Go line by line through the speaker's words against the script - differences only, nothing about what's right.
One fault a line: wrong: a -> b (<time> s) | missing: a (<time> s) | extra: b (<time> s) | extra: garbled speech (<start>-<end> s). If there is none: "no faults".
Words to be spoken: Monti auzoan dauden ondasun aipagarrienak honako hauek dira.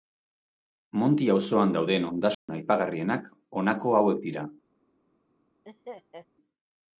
no faults